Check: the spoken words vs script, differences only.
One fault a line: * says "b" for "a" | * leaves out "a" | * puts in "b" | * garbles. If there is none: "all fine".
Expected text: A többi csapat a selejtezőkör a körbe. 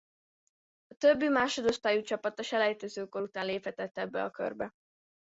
* puts in "másodosztályú"
* puts in "után léphetett ebbe"